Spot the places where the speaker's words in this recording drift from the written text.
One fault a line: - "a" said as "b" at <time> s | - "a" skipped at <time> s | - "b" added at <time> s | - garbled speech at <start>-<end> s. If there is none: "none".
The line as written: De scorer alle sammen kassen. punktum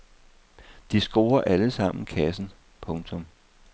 none